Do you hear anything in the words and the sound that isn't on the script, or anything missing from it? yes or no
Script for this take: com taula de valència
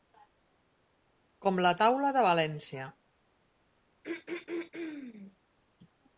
yes